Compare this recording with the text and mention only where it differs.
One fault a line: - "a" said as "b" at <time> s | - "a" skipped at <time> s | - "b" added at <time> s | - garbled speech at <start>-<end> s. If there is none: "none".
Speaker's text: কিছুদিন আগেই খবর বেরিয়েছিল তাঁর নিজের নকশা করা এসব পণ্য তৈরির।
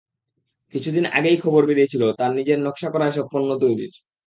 none